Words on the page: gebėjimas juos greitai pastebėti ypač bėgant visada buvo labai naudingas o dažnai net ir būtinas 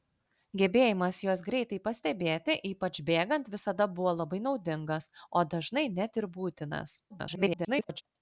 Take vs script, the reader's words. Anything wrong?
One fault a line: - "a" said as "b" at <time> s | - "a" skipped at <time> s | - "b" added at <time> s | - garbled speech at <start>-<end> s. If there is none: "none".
- garbled speech at 7.1-8.0 s